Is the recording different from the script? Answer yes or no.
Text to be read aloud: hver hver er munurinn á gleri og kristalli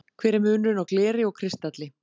yes